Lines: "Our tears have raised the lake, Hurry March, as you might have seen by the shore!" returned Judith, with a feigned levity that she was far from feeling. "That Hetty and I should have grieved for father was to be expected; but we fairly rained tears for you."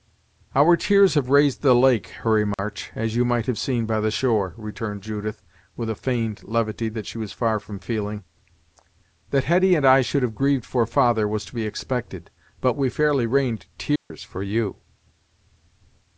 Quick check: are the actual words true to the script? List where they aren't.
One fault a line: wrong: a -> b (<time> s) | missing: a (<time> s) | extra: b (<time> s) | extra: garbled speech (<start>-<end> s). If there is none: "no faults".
no faults